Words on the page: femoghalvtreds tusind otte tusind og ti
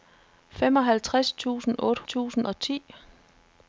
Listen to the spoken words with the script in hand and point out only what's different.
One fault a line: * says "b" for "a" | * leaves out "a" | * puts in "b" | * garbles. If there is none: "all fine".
all fine